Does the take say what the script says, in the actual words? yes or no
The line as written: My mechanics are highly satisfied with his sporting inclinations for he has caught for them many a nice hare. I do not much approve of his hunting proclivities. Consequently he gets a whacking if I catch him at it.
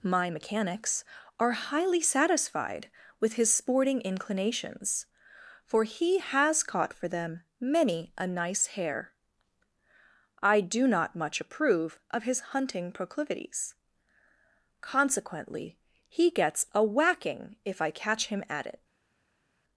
yes